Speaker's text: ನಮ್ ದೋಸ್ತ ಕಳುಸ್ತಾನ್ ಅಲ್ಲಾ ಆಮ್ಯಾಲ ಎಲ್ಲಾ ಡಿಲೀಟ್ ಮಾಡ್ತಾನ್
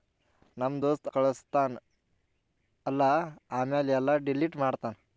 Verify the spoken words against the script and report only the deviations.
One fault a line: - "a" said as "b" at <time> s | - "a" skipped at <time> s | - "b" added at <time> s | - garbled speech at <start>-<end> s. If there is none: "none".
none